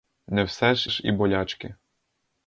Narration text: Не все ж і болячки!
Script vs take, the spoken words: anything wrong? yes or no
yes